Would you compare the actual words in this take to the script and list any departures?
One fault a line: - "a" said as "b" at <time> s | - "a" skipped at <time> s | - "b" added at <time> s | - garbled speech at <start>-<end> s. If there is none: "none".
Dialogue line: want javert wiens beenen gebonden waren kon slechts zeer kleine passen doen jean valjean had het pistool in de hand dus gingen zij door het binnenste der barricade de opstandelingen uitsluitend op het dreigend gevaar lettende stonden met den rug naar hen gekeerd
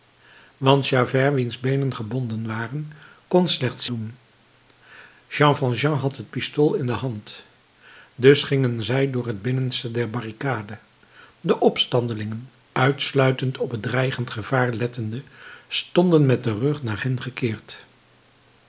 - "zeer kleine passen" skipped at 3.9 s